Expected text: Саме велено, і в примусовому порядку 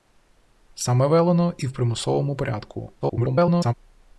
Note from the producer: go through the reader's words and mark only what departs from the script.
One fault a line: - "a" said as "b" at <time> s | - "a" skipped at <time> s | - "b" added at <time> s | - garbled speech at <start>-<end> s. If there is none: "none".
- garbled speech at 3.0-3.7 s